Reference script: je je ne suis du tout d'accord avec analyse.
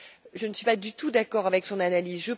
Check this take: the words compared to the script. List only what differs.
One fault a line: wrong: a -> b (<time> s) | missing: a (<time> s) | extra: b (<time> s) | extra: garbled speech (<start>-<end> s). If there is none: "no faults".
missing: je (0.5 s)
extra: pas (0.6 s)
extra: son (1.7 s)